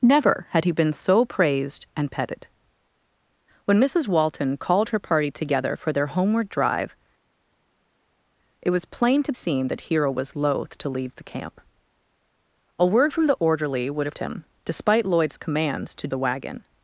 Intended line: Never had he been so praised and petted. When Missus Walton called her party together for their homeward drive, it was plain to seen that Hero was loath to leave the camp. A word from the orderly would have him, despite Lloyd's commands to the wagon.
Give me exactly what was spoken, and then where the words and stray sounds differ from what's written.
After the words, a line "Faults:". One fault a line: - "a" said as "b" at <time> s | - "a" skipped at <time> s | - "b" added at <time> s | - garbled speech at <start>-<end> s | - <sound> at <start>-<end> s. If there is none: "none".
Never had he been so praised and petted. When Missus Walton called her party together for their homeward drive, it was plain to seen that Hero was loath to leave the camp. A word from the orderly would have him, despite Lloyd's commands to the wagon.
Faults:
none